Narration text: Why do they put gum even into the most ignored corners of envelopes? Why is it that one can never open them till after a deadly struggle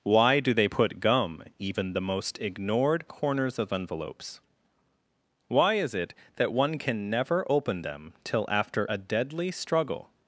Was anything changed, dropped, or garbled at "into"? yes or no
yes